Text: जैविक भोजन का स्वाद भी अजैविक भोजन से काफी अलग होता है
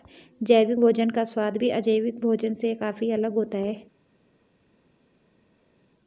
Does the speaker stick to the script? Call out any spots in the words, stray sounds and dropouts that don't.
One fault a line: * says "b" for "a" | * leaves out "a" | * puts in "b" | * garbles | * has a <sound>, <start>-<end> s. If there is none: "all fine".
all fine